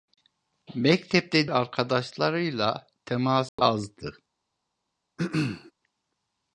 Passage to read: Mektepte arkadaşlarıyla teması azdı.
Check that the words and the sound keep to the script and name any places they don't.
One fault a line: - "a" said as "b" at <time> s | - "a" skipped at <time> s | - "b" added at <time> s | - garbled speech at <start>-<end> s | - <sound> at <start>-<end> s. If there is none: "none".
- dropout at 3.5-3.6 s
- throat clearing at 5.2-5.7 s